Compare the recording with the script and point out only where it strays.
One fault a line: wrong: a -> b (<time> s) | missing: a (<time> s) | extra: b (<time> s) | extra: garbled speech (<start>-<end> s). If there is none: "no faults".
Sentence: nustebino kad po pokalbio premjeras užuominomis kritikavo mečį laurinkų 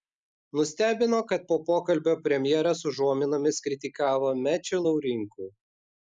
no faults